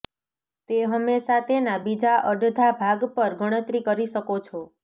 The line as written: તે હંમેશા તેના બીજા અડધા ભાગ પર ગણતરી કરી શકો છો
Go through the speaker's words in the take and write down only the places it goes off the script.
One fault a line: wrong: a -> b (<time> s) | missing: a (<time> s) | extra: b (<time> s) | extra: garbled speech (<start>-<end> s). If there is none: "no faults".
no faults